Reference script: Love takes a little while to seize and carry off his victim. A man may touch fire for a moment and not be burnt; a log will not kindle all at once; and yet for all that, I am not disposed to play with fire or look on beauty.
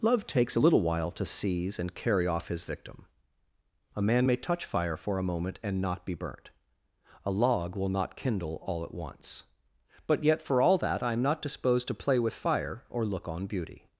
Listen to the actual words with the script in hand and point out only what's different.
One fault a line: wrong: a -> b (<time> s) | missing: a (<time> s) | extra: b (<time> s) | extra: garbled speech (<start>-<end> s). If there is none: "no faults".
wrong: and -> but (10.1 s)